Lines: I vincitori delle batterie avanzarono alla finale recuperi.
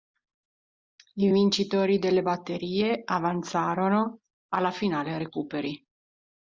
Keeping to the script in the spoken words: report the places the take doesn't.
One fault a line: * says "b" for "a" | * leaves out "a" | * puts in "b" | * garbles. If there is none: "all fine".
all fine